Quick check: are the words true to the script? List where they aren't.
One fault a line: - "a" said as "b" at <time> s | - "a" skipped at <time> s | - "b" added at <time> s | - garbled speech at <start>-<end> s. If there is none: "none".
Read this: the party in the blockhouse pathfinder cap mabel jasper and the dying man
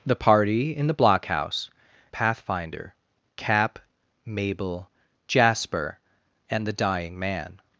none